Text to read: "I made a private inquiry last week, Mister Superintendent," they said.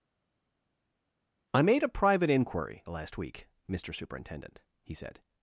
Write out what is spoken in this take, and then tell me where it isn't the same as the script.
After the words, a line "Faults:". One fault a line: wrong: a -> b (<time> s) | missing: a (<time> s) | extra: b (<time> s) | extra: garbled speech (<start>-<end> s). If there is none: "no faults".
"I made a private inquiry last week, Mister Superintendent," he said.
Faults:
wrong: they -> he (4.8 s)